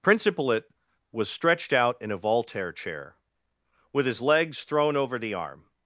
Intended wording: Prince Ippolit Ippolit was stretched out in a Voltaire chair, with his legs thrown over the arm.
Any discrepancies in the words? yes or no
yes